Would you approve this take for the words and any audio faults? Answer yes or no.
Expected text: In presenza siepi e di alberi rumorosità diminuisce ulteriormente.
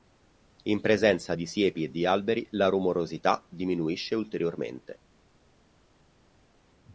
no